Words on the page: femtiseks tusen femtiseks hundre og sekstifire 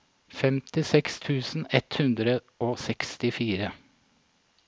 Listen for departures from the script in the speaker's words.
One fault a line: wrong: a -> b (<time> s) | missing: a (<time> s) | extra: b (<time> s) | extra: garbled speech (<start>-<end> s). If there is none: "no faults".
wrong: femtiseks -> ett (1.8 s)